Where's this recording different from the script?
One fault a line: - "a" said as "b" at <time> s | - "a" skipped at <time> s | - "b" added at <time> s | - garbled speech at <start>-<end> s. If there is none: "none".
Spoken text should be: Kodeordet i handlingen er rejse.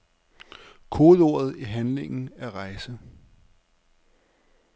none